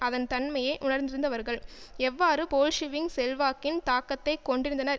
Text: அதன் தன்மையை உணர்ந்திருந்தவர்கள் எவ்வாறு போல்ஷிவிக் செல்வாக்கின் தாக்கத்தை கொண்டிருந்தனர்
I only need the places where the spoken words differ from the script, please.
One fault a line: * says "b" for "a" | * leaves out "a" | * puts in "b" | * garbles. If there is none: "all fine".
all fine